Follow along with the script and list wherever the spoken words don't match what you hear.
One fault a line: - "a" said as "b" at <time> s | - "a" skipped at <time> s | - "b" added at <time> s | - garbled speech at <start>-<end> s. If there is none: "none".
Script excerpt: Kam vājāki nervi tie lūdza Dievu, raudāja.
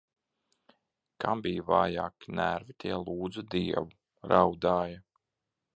- "bija" added at 1.5 s